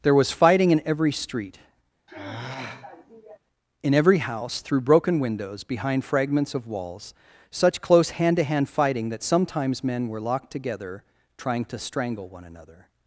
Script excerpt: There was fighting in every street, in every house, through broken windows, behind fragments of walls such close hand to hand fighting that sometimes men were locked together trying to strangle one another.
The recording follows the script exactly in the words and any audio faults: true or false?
false